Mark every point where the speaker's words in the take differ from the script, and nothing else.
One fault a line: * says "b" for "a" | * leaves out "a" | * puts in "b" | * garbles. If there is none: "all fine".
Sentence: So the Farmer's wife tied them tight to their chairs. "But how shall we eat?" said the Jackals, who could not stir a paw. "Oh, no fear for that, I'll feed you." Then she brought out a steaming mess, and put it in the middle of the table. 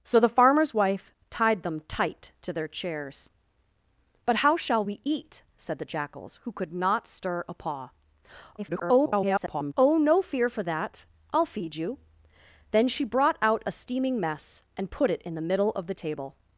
* garbles